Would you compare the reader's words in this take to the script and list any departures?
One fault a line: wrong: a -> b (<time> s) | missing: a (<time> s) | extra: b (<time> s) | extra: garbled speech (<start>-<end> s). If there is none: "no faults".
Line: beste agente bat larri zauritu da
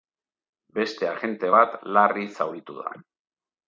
no faults